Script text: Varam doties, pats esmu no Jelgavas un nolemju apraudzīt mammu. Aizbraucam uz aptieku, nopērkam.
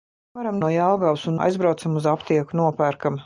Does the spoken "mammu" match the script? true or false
false